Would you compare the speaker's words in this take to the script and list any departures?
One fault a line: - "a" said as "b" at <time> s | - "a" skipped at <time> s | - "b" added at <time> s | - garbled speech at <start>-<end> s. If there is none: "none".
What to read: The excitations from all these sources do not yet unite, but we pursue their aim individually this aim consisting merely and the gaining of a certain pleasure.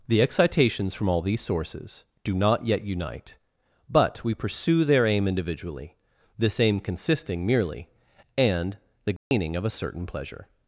none